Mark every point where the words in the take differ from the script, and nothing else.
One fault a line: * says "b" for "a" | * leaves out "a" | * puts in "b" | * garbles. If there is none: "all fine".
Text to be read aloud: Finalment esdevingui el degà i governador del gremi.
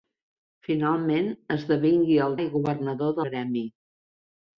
* leaves out "degà"
* leaves out "del"